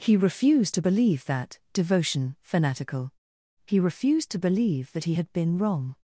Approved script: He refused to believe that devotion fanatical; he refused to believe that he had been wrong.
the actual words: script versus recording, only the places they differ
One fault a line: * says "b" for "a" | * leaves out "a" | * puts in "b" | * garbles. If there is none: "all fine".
all fine